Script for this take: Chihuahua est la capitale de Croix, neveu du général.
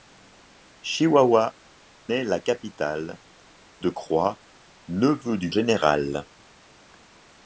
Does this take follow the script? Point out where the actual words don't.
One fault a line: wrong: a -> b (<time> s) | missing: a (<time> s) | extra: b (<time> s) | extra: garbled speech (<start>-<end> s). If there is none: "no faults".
no faults